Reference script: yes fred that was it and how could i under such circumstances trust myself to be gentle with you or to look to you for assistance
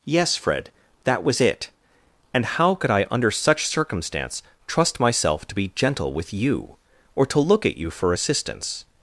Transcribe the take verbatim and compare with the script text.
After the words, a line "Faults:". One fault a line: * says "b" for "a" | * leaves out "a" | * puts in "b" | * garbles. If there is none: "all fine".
yes fred that was it and how could i under such circumstance trust myself to be gentle with you or to look at you for assistance
Faults:
* says "circumstance" for "circumstances"
* says "at" for "to"